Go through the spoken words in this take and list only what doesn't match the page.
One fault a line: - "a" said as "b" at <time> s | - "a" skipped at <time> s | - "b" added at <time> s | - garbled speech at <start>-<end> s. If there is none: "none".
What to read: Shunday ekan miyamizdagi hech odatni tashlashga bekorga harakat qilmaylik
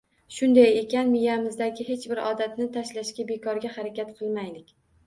- "bir" added at 2.1 s